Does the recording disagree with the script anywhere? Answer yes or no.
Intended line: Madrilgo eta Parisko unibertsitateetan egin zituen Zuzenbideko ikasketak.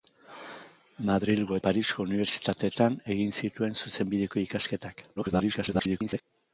yes